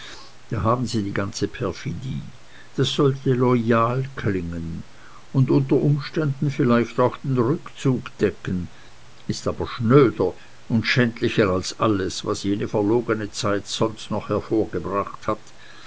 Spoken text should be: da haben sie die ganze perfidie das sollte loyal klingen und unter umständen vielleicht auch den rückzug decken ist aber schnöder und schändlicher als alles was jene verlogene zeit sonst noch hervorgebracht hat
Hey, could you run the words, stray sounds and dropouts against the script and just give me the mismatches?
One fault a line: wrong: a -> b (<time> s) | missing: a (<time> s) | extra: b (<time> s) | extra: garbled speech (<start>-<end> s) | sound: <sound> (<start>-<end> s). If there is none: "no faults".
no faults